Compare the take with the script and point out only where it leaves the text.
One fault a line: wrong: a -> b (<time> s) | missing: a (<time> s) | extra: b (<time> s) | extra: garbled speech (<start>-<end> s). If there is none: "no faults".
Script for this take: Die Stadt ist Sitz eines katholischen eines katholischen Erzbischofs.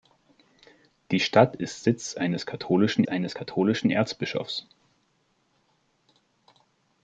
no faults